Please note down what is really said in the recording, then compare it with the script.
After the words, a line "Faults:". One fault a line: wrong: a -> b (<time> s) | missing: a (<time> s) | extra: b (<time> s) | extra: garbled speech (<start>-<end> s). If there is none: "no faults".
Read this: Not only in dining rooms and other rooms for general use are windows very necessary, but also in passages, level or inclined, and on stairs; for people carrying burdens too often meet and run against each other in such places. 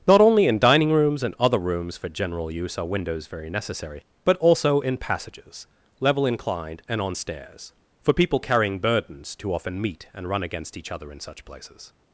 Not only in dining rooms and other rooms for general use are windows very necessary, but also in passages, level inclined, and on stairs; for people carrying burdens too often meet and run against each other in such places.
Faults:
missing: or (6.2 s)